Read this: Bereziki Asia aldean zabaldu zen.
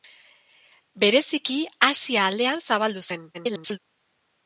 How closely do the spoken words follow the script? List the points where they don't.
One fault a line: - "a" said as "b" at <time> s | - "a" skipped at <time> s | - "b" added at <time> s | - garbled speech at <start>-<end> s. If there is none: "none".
- garbled speech at 3.3-3.8 s